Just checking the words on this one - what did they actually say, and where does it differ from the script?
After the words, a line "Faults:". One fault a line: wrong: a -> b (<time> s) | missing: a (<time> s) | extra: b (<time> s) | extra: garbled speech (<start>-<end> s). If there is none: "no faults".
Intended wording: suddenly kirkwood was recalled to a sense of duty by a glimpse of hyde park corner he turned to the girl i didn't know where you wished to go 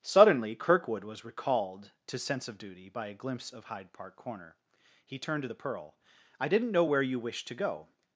suddenly kirkwood was recalled to sense of duty by a glimpse of hyde park corner he turned to the pearl i didn't know where you wished to go
Faults:
missing: a (2.2 s)
wrong: girl -> pearl (5.5 s)